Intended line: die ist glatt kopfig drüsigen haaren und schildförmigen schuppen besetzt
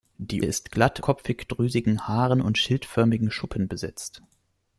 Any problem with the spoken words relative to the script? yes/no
no